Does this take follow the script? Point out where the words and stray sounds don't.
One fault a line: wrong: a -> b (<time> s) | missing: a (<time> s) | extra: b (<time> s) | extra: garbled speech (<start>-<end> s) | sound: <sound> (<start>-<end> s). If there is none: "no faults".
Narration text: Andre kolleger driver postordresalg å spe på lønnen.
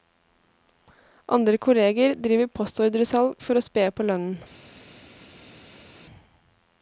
extra: for (3.5 s)